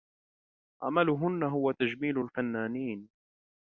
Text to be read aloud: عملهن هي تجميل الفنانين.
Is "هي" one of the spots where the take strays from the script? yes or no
yes